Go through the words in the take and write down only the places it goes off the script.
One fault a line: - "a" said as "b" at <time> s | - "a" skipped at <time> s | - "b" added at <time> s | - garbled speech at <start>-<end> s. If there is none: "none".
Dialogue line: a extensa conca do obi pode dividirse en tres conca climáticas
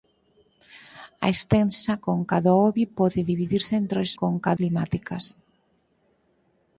none